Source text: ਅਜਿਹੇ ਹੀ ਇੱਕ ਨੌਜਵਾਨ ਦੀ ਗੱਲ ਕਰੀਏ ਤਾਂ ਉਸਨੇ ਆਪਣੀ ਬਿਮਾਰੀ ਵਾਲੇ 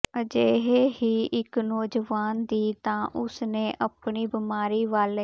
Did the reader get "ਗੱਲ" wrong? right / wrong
wrong